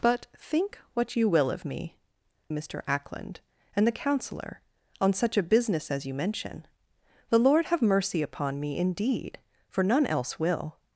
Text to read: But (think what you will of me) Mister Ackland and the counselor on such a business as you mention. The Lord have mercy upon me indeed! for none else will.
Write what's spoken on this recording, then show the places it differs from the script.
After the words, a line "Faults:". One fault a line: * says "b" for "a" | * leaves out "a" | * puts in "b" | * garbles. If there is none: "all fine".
But (think what you will of me) Mister Ackland and the counselor on such a business as you mention. The Lord have mercy upon me indeed! for none else will.
Faults:
all fine